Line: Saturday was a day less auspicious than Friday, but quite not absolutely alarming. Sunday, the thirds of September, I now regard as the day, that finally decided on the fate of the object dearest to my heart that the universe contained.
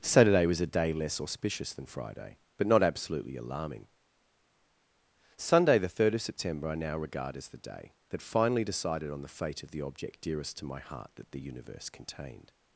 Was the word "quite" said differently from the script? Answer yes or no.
yes